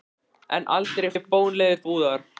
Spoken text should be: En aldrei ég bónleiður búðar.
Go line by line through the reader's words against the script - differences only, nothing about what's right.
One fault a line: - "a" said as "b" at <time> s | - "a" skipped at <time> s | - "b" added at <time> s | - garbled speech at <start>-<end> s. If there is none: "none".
none